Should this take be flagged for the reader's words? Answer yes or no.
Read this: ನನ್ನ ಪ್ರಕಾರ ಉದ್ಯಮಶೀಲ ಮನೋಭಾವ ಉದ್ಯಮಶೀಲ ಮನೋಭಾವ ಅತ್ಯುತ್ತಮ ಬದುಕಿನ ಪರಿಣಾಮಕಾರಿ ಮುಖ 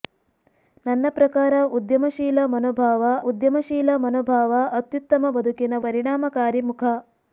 no